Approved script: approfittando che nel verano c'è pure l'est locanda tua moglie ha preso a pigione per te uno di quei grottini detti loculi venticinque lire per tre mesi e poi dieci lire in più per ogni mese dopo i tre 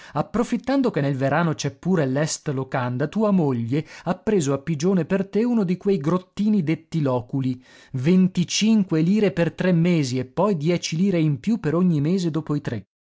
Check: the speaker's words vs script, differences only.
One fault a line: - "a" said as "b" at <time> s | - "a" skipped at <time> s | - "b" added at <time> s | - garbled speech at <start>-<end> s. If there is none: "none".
none